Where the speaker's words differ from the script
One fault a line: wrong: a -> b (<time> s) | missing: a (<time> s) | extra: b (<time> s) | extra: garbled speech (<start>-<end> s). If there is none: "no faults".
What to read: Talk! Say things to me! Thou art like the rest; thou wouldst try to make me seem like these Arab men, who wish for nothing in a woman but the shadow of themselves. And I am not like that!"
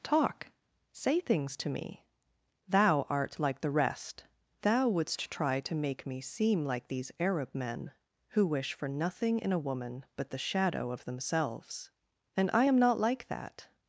no faults